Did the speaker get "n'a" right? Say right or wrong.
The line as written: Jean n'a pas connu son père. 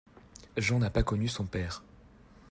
right